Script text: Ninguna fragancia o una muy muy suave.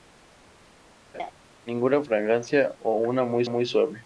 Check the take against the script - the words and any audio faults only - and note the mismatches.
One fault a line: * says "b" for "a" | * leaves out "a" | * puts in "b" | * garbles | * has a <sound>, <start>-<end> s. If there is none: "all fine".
* has a laugh, 1.1-1.3 s